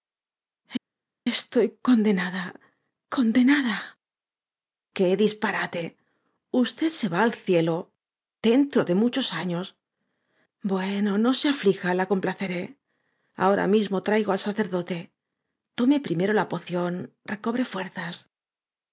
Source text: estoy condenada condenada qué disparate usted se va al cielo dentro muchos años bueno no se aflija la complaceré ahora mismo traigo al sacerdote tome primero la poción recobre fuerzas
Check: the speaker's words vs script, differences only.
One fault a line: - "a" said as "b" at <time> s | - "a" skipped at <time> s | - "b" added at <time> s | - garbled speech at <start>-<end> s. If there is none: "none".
- "de" added at 8.8 s